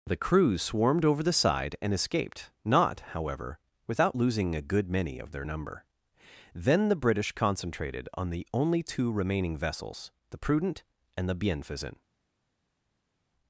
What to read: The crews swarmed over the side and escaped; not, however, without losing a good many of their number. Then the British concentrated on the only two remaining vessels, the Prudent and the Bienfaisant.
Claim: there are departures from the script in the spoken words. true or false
false